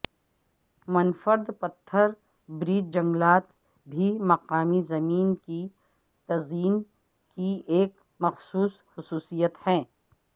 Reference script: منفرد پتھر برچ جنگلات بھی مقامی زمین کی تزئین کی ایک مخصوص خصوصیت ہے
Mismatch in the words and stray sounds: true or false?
false